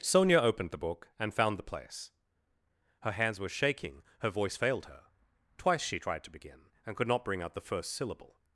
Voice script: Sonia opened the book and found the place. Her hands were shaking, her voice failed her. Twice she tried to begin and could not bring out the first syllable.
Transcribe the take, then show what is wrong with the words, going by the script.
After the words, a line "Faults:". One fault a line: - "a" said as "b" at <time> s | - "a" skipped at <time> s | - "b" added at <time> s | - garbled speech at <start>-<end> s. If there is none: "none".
Sonia opened the book and found the place. Her hands were shaking, her voice failed her. Twice she tried to begin and could not bring out the first syllable.
Faults:
none